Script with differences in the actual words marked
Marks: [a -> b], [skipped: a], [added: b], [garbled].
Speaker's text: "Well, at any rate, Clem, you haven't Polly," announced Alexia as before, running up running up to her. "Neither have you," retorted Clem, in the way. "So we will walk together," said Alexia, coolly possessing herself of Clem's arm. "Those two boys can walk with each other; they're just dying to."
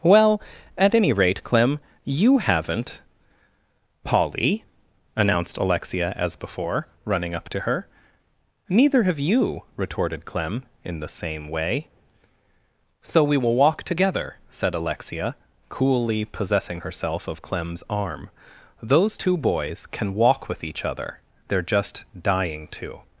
"Well, at any rate, Clem, you haven't Polly," announced Alexia as before, running up [skipped: running up] to her. "Neither have you," retorted Clem, in the [added: same] way. "So we will walk together," said Alexia, coolly possessing herself of Clem's arm. "Those two boys can walk with each other; they're just dying to."